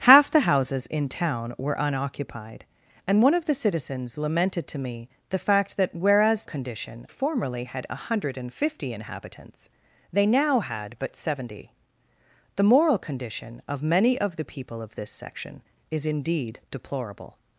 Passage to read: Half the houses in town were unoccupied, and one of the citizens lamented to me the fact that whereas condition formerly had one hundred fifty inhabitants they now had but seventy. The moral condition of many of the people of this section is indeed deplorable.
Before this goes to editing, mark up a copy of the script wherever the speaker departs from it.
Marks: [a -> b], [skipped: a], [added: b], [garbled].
Half the houses in town were unoccupied, and one of the citizens lamented to me the fact that whereas condition formerly had one hundred fifty inhabitants they now had but seventy. The moral condition of many of the people of this section is indeed deplorable.